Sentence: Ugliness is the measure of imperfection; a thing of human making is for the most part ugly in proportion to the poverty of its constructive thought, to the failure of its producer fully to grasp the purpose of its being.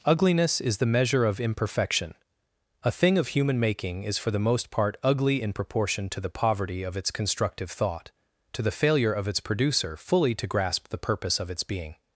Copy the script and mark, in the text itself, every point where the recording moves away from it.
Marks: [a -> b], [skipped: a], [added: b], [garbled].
Ugliness is the measure of imperfection; a thing of human making is for the most part ugly in proportion to the poverty of its constructive thought, to the failure of its producer fully to grasp the purpose of its being.